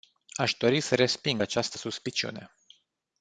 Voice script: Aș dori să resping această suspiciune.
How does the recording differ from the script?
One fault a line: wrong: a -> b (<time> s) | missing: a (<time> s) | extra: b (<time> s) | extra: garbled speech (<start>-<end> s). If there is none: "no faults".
no faults